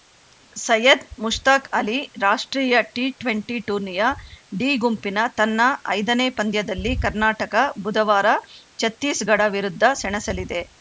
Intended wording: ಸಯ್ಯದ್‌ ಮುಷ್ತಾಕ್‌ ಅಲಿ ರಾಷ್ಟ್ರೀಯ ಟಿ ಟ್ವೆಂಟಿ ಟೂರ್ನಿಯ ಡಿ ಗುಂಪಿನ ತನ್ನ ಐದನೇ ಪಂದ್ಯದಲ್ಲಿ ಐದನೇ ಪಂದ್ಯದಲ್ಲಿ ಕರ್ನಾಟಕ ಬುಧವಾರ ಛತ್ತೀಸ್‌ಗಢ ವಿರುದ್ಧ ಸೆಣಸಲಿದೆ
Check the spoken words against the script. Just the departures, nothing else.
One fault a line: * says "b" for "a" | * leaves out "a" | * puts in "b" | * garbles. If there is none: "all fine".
* leaves out "ಐದನೇ ಪಂದ್ಯದಲ್ಲಿ"